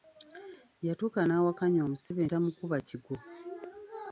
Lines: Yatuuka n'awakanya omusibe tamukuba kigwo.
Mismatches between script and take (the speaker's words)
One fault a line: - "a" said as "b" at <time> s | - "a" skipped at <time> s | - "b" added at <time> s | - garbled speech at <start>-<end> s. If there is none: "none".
none